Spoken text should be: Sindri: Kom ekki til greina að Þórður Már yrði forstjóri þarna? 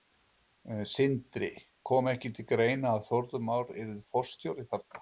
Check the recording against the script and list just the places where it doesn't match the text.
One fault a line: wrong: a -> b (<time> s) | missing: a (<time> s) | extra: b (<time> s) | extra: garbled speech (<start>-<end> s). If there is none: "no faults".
no faults